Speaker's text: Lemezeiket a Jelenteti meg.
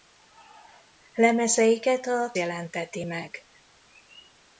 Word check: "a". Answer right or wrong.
right